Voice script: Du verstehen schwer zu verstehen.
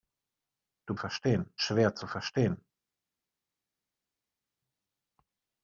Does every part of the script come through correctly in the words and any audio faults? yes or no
yes